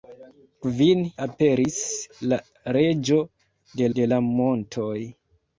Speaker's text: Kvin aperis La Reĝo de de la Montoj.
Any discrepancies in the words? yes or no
no